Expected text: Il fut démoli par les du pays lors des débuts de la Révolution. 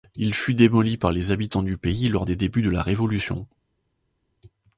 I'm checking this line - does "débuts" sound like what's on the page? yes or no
yes